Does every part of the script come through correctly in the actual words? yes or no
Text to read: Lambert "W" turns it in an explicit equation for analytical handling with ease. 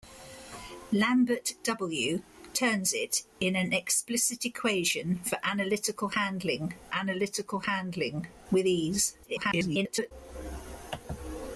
no